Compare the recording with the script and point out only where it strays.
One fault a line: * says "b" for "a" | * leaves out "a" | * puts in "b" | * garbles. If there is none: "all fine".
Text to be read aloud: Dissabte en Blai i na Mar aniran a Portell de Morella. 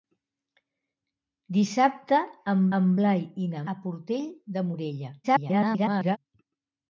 * puts in "en"
* leaves out "Mar aniran"
* garbles